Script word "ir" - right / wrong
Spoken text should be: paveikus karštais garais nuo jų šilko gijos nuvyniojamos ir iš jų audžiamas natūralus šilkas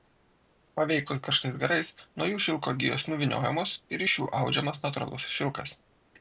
right